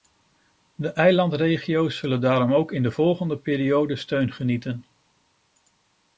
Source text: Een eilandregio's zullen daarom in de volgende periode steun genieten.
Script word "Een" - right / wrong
wrong